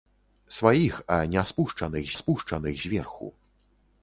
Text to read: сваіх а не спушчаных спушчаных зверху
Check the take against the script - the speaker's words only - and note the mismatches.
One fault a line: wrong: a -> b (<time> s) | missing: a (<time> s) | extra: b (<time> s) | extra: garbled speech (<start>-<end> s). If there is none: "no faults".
no faults